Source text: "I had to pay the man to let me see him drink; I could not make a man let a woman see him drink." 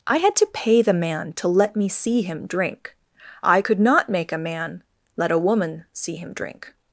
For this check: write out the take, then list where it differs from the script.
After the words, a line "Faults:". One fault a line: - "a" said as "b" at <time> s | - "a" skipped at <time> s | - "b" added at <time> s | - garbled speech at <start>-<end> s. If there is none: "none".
"I had to pay the man to let me see him drink; I could not make a man let a woman see him drink."
Faults:
none